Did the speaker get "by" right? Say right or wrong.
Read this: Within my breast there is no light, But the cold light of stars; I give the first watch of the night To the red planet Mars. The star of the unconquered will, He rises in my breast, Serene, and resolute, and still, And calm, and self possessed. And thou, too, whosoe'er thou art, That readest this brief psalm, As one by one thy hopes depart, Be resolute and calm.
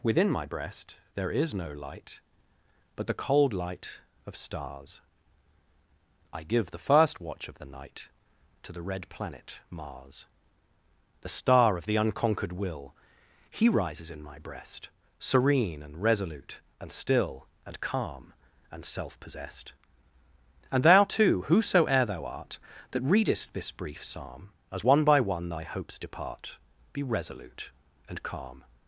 right